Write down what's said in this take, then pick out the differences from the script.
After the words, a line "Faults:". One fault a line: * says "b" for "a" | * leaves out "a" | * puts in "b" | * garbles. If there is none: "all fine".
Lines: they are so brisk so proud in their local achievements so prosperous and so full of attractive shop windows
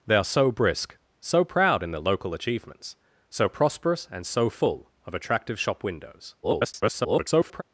they are so brisk so proud in their local achievements so prosperous and so full of attractive shop windows [garbled]
Faults:
* garbles